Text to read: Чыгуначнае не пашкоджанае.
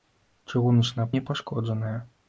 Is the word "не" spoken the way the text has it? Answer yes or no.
yes